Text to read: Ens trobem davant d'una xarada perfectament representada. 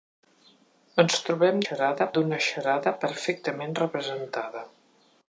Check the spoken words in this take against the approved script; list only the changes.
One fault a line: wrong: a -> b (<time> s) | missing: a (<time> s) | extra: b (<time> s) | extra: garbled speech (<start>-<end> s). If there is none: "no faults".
wrong: davant -> xarada (1.6 s)